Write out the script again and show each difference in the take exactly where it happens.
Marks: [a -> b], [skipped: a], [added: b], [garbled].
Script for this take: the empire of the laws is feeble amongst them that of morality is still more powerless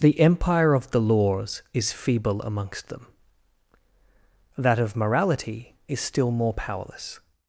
the empire of the laws is feeble amongst them that of morality is still more powerless